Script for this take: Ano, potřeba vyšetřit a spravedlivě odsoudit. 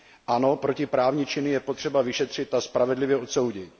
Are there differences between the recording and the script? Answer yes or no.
yes